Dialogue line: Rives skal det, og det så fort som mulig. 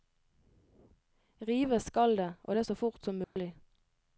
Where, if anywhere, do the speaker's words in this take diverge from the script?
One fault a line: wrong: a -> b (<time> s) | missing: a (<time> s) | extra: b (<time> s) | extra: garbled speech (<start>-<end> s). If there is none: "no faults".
no faults